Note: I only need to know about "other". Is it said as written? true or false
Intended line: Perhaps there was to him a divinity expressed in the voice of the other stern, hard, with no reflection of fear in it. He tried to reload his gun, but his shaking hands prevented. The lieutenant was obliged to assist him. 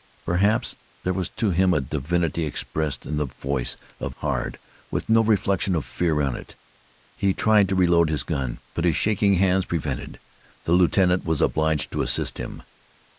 false